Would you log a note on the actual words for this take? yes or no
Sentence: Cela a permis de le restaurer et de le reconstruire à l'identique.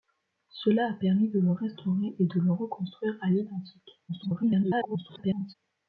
yes